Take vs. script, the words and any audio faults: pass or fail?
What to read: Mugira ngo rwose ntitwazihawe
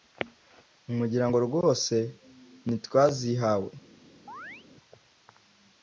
fail